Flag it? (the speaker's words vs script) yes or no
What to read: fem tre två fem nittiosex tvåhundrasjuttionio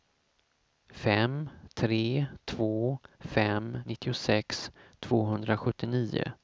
no